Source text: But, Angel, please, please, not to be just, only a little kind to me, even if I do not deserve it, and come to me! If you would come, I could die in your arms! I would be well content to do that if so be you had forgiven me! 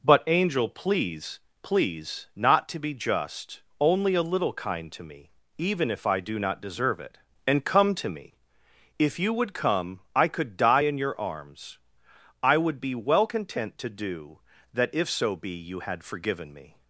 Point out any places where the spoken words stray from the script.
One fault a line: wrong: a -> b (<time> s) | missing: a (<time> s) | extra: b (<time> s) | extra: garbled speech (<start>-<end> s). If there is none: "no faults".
no faults